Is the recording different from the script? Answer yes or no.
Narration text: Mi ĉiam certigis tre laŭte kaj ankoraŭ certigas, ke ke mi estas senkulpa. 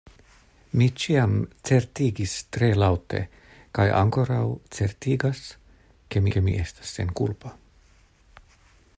no